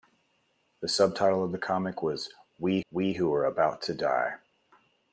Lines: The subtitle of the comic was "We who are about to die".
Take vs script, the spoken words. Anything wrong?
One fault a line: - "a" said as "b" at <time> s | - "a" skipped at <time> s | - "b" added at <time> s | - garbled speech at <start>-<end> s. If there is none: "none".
- "we" added at 2.9 s